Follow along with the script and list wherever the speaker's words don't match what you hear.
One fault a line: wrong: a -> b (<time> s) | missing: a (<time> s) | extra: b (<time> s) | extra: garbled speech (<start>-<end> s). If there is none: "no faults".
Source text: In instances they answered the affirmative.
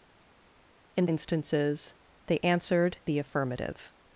no faults